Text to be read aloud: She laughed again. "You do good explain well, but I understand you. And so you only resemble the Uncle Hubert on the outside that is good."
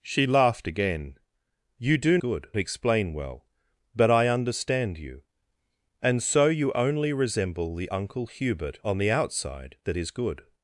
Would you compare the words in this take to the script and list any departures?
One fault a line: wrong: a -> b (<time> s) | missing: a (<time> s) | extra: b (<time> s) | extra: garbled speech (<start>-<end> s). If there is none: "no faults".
no faults